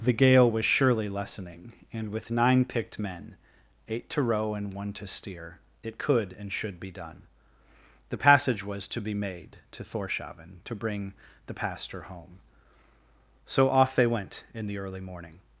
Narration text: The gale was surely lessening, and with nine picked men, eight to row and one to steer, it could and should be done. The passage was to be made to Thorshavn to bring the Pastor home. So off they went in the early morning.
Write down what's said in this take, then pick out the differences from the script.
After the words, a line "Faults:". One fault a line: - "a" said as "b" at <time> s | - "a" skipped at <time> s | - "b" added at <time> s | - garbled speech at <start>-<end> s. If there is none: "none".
The gale was surely lessening, and with nine picked men, eight to row and one to steer, it could and should be done. The passage was to be made to Thorshavn to bring the Pastor home. So off they went in the early morning.
Faults:
none